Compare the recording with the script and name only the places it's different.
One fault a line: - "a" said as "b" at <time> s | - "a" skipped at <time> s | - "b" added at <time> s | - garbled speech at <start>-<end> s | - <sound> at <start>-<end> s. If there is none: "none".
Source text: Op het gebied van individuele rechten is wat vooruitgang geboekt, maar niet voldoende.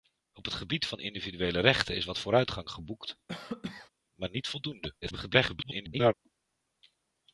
- cough at 3.3-3.9 s
- garbled speech at 5.0-6.1 s